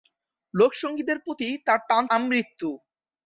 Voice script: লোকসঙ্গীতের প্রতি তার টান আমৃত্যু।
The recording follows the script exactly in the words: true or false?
true